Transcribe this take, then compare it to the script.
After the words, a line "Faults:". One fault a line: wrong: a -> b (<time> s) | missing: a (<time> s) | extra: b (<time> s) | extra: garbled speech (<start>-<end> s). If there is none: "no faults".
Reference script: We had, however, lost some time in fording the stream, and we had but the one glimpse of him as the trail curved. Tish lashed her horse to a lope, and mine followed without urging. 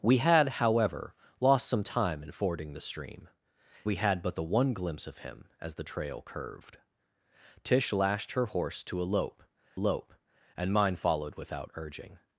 We had, however, lost some time in fording the stream, we had but the one glimpse of him as the trail curved. Tish lashed her horse to a lope lope, and mine followed without urging.
Faults:
missing: and (3.3 s)
extra: lope (9.8 s)